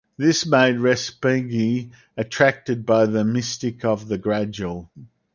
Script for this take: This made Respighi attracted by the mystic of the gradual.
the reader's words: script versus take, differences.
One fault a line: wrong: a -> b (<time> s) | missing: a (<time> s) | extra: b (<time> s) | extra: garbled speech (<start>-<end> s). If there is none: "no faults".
no faults